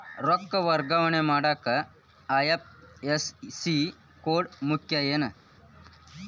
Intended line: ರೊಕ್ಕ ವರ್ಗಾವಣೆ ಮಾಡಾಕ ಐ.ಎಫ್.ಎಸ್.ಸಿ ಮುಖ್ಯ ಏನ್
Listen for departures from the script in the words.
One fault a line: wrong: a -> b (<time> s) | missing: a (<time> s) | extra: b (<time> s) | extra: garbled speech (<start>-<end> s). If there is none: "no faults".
extra: ಕೋಡ್ (4.2 s)